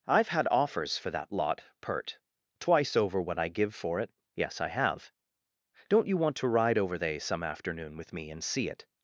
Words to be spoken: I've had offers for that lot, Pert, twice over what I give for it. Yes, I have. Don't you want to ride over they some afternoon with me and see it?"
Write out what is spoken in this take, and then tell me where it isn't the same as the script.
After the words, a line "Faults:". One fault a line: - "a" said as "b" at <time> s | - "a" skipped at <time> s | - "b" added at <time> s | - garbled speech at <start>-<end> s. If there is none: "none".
I've had offers for that lot, Pert, twice over what I give for it. Yes, I have. Don't you want to ride over they some afternoon with me and see it?"
Faults:
none